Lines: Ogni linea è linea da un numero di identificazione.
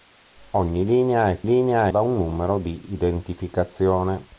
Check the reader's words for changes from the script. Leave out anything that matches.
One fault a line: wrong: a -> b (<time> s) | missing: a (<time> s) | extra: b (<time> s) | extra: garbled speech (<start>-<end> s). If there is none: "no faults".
no faults